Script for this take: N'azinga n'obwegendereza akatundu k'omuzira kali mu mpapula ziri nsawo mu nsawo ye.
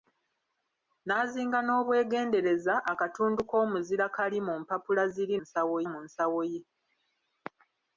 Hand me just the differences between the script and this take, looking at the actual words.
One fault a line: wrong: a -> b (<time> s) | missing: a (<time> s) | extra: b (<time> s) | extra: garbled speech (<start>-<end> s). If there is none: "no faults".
no faults